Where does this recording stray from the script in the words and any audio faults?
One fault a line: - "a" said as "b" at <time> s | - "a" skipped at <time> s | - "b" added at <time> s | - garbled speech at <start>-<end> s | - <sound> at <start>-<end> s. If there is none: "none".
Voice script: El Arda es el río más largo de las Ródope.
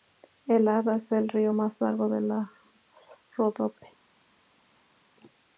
none